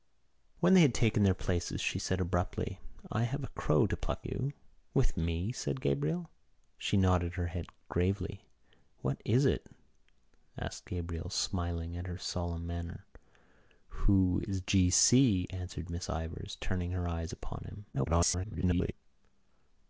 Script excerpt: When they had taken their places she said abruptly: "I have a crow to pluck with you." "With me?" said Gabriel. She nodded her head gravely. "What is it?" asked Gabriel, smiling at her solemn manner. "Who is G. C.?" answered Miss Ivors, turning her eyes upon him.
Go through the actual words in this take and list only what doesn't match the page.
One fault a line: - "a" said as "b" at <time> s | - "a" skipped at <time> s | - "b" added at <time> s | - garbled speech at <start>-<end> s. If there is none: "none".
- "with" skipped at 4.3 s
- garbled speech at 17.9-18.9 s